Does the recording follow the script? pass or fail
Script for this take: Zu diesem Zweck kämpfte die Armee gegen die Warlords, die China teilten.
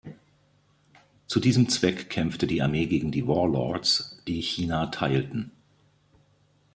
pass